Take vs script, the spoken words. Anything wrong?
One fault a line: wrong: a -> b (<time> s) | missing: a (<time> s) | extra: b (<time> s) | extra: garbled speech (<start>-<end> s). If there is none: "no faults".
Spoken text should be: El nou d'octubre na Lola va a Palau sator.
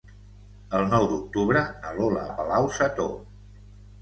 missing: va (2.3 s)